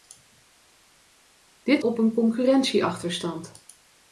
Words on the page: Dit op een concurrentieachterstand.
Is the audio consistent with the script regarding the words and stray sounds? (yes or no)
yes